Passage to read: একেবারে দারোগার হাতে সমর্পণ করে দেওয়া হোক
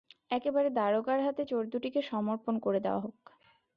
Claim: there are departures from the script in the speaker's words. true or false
true